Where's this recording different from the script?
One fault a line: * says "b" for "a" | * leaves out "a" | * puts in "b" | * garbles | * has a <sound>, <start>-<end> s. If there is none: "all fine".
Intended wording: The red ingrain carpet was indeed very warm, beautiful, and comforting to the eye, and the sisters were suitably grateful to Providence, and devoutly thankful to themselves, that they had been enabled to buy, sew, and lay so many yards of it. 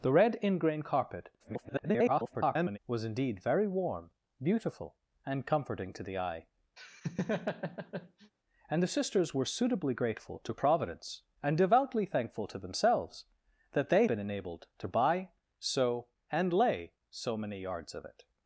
* garbles
* has a laugh, 6.8-8.3 s
* leaves out "had"